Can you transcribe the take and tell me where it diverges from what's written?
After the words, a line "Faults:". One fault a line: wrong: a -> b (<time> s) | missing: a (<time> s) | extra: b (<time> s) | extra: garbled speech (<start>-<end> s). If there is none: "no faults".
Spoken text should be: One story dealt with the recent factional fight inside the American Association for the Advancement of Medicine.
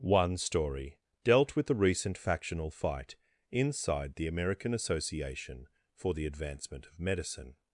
One story dealt with the recent factional fight inside the American Association for the Advancement of Medicine.
Faults:
no faults